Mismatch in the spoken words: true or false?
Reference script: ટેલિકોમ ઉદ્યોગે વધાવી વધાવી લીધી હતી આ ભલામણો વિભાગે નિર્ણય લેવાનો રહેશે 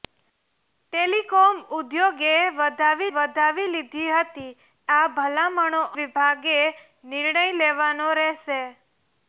false